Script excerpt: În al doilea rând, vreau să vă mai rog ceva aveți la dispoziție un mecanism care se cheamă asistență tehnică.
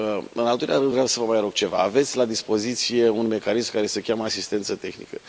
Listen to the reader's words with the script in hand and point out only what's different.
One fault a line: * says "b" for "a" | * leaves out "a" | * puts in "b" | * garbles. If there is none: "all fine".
all fine